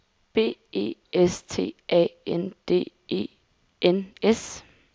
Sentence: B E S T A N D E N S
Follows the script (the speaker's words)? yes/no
yes